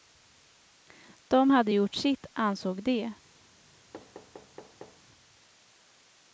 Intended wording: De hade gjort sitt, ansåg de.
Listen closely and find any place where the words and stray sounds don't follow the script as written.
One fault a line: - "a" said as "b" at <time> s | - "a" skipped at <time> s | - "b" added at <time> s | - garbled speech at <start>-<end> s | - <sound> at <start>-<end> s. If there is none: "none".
- thud at 3.9-5.0 s